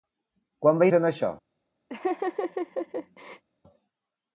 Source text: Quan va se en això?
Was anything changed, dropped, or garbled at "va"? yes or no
no